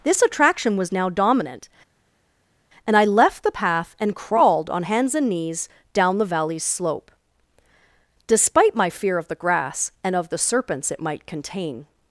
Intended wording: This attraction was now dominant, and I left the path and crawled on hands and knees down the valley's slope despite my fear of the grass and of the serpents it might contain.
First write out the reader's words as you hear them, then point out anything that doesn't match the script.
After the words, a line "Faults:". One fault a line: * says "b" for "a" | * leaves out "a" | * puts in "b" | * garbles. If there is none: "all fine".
This attraction was now dominant, and I left the path and crawled on hands and knees down the valley's slope despite my fear of the grass and of the serpents it might contain.
Faults:
all fine